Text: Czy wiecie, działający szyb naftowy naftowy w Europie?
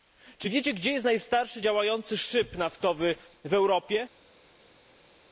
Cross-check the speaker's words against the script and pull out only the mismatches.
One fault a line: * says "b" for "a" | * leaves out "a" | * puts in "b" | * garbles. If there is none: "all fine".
* puts in "gdzie jest najstarszy"
* leaves out "naftowy"